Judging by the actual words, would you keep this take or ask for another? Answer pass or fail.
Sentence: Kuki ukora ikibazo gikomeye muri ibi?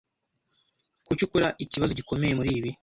pass